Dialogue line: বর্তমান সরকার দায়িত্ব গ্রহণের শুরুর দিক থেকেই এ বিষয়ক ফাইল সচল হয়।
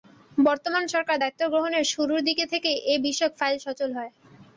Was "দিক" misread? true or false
false